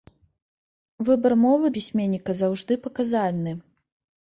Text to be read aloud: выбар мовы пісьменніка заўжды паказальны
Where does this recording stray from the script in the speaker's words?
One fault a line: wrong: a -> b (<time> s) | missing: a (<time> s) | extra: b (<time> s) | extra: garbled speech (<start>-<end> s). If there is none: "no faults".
no faults